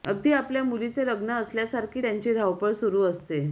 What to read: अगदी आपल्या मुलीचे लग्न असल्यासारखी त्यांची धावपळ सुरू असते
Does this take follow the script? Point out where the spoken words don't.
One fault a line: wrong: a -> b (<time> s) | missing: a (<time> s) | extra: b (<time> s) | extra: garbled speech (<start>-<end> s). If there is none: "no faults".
no faults